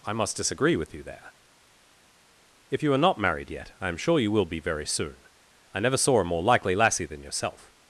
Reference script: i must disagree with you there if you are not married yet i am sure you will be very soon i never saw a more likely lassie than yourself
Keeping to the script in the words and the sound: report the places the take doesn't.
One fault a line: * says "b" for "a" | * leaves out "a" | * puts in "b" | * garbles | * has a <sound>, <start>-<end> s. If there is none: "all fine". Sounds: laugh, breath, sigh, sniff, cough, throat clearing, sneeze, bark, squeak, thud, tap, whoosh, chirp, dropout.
all fine